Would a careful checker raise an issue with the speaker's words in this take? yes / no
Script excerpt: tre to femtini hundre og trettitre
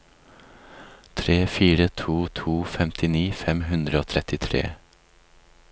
yes